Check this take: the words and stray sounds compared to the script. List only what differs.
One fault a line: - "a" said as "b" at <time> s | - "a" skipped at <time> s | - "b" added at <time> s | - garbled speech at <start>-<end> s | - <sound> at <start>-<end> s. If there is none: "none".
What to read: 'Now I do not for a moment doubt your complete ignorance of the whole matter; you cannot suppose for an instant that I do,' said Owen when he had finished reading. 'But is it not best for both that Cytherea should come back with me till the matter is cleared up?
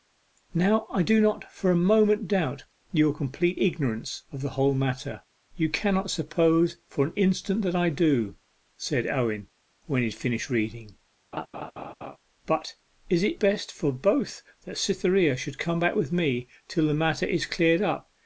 - laugh at 11.3-12.2 s
- "not" skipped at 13.4 s